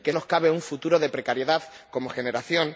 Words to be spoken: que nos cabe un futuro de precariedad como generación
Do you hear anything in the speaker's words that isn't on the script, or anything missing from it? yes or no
no